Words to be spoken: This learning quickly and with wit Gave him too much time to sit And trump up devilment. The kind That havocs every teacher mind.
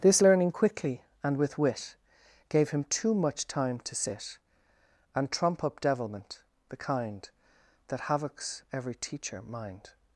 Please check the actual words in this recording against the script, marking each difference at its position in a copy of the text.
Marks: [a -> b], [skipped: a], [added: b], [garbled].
This learning quickly and with wit Gave him too much time to sit And trump up devilment. The kind That havocs every teacher mind.